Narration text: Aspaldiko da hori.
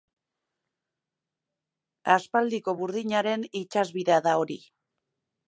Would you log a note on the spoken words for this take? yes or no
yes